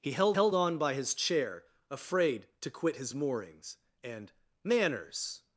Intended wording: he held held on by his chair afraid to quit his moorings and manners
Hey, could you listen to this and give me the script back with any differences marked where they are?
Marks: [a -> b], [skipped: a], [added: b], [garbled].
he held held on by his chair afraid to quit his moorings and manners